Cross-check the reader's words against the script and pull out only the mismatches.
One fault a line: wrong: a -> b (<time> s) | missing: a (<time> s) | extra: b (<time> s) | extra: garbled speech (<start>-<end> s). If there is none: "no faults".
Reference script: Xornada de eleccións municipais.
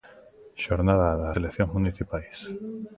no faults